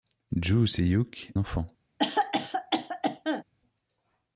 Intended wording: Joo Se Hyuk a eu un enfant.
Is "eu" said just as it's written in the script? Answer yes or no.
no